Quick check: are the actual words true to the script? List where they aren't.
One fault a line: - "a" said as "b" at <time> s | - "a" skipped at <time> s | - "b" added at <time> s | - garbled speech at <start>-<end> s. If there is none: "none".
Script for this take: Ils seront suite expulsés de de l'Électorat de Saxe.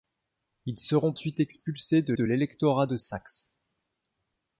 none